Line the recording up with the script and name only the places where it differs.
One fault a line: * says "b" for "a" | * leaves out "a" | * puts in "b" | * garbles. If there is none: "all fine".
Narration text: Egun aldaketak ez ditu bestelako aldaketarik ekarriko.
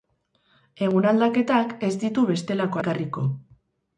* leaves out "aldaketarik"